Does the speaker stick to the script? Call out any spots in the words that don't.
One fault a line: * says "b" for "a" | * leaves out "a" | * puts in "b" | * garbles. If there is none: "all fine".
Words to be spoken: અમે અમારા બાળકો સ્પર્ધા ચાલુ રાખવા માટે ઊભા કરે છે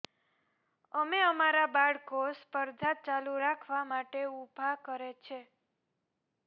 all fine